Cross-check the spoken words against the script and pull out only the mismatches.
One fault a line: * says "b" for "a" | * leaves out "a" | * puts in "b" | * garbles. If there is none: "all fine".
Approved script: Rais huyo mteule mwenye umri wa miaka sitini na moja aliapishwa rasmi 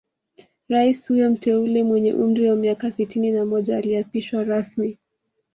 all fine